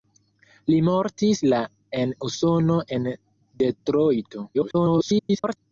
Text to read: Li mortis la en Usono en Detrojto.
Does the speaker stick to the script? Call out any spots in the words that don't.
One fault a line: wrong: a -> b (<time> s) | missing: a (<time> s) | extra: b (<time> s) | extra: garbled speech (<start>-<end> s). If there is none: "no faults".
extra: garbled speech (4.5-5.6 s)